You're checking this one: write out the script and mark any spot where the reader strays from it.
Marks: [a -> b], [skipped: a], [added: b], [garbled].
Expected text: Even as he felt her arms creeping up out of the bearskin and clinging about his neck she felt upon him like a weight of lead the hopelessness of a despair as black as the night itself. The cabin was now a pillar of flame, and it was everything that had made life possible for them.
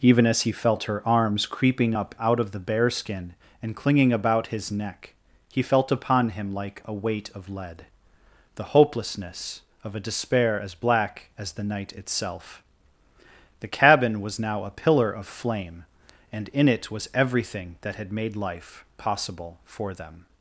Even as he felt her arms creeping up out of the bearskin and clinging about his neck [she -> he] felt upon him like a weight of lead the hopelessness of a despair as black as the night itself. The cabin was now a pillar of flame, and [added: in] it was everything that had made life possible for them.